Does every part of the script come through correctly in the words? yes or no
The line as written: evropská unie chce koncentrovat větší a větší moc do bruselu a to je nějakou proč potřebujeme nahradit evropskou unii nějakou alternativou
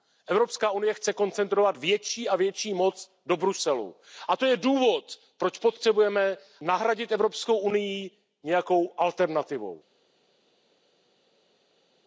no